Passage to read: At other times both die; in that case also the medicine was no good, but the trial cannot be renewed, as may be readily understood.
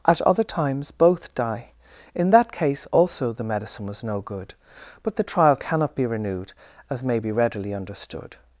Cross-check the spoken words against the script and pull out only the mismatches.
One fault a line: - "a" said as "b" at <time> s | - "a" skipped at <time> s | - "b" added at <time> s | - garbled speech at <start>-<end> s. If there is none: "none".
none